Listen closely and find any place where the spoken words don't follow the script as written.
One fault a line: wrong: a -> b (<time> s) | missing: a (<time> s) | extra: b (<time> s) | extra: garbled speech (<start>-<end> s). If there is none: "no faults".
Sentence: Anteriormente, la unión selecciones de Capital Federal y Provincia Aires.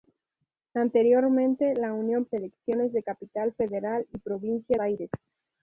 no faults